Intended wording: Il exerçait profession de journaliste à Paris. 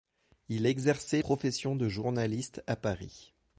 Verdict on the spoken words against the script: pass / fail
pass